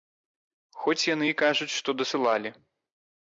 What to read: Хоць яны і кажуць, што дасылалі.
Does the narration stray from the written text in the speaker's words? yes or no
no